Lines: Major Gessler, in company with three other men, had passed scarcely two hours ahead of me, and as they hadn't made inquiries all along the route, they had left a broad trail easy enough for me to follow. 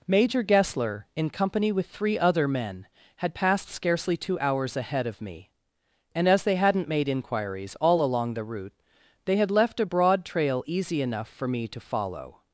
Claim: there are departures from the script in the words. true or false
false